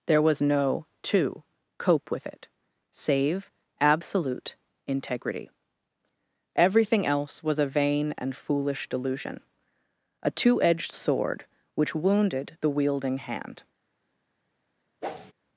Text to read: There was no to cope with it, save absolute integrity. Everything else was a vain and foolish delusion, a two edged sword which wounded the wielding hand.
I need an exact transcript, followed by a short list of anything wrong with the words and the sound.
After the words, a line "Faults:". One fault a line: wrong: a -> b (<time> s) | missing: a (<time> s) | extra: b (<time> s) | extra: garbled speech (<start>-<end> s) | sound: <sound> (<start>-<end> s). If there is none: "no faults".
There was no to cope with it, save absolute integrity. Everything else was a vain and foolish delusion, a two edged sword which wounded the wielding hand.
Faults:
sound: whoosh (15.0-15.3 s)